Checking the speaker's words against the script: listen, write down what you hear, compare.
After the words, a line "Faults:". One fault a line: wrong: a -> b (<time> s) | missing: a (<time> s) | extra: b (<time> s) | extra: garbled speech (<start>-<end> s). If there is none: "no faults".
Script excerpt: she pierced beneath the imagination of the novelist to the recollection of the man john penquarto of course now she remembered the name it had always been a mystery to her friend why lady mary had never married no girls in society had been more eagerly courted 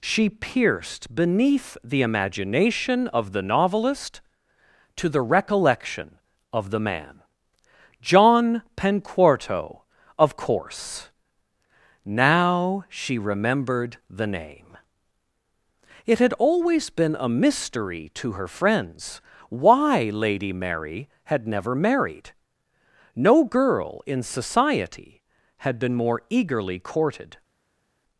she pierced beneath the imagination of the novelist to the recollection of the man john penquarto of course now she remembered the name it had always been a mystery to her friends why lady mary had never married no girl in society had been more eagerly courted
Faults:
wrong: friend -> friends (18.5 s)
wrong: girls -> girl (23.4 s)